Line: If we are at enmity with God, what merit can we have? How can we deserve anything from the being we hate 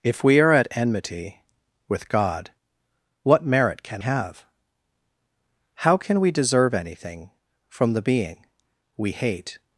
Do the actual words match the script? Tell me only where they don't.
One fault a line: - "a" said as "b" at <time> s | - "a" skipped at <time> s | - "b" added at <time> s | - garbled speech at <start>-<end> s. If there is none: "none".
- "we" skipped at 4.0 s